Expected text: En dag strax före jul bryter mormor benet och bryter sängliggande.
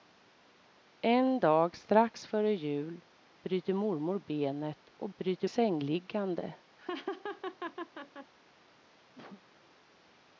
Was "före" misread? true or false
false